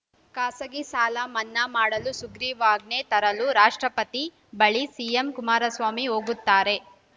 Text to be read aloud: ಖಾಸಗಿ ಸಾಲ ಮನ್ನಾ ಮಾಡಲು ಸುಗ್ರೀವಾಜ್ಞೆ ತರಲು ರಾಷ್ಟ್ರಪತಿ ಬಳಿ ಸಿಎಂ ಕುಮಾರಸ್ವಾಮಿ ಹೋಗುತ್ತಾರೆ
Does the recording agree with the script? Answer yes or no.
yes